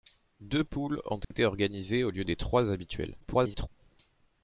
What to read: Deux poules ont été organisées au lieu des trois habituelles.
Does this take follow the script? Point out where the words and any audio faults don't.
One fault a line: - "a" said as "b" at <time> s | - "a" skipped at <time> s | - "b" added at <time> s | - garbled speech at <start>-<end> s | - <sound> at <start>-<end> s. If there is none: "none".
- dropout at 1.2-1.3 s
- garbled speech at 3.2-3.7 s